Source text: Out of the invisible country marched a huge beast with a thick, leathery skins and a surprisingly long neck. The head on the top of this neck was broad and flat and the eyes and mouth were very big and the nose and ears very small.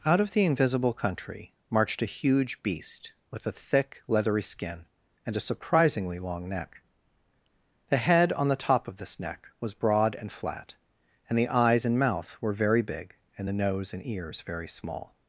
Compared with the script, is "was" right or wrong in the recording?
right